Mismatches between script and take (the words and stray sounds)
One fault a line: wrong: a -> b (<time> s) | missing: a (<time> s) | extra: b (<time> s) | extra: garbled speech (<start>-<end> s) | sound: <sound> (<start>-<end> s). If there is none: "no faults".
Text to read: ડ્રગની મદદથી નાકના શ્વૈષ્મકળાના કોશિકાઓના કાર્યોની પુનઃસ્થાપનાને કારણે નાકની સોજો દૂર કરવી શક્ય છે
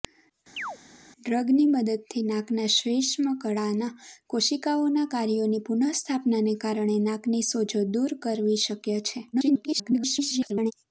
sound: chirp (0.6-0.8 s)
extra: garbled speech (9.3-10.7 s)